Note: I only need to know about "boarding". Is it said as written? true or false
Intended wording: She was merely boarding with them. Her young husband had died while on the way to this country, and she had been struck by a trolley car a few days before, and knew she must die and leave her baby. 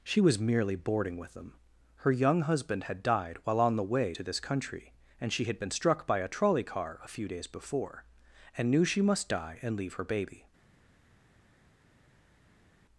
true